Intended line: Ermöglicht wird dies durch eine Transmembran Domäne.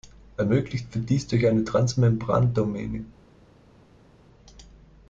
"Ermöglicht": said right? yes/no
yes